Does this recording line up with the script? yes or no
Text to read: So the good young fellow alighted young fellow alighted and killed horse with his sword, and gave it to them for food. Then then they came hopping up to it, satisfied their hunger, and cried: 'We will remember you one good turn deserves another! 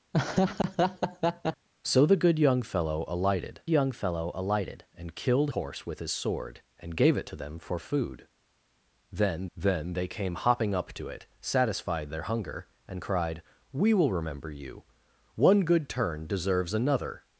yes